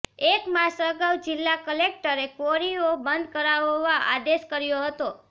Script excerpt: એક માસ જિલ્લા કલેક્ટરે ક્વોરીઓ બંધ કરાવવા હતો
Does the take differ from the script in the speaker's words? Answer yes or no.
yes